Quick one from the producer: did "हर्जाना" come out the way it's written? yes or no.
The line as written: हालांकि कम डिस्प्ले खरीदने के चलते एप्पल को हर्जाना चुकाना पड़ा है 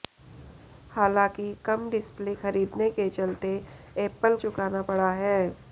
no